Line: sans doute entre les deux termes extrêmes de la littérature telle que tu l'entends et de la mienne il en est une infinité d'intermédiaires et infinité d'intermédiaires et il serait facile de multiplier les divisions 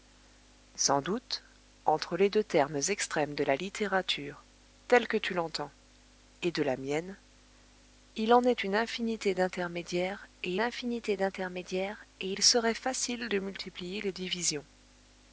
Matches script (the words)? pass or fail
pass